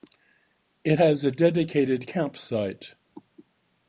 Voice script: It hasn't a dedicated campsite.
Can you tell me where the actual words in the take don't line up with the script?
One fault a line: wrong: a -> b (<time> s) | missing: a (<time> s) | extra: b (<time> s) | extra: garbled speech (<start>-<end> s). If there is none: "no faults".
wrong: hasn't -> has (1.0 s)